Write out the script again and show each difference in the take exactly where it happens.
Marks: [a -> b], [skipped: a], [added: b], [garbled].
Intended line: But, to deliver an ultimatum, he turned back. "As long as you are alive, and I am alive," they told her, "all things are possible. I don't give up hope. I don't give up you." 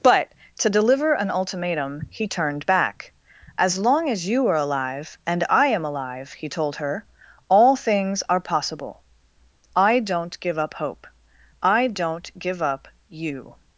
But, to deliver an ultimatum, he turned back. "As long as you are alive, and I am alive," [they -> he] told her, "all things are possible. I don't give up hope. I don't give up you."